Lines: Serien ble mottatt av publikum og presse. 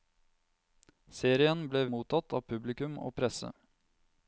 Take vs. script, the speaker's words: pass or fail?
pass